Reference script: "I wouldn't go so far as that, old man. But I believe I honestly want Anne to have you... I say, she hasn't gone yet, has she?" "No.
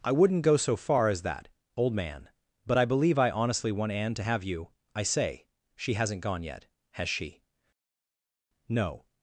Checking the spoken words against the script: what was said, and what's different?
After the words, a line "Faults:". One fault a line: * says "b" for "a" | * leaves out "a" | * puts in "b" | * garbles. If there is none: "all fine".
"I wouldn't go so far as that, old man. But I believe I honestly want Anne to have you... I say, she hasn't gone yet, has she?" "No.
Faults:
all fine